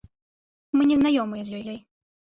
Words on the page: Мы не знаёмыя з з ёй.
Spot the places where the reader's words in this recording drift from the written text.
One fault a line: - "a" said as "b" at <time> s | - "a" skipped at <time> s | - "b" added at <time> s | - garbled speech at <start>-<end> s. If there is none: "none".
none